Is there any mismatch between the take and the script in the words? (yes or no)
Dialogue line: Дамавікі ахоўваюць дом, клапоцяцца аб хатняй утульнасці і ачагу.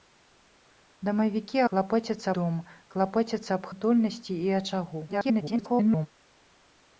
yes